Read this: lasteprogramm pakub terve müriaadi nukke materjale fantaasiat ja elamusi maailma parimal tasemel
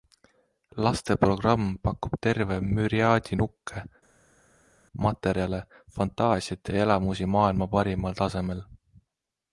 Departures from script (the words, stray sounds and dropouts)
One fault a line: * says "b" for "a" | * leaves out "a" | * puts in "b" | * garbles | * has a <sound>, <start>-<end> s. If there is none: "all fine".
all fine